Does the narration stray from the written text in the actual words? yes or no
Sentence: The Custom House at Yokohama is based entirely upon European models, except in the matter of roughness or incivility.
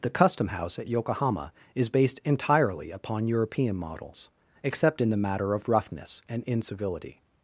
yes